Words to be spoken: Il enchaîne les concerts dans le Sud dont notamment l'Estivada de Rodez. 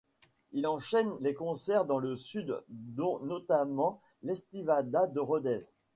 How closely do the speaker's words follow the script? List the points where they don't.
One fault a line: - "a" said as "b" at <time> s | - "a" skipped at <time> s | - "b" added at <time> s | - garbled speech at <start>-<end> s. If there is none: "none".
none